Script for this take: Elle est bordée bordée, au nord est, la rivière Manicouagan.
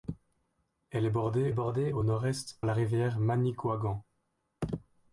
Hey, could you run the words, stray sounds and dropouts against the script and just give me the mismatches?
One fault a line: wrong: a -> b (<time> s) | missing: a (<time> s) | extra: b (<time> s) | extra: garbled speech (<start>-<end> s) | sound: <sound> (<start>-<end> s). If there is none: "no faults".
no faults